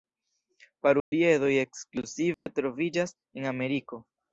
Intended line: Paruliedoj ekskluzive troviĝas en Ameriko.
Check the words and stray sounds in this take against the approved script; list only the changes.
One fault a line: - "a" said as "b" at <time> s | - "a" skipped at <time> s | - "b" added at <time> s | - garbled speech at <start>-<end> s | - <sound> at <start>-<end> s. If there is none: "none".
- dropout at 1.0-1.1 s
- dropout at 2.3-2.5 s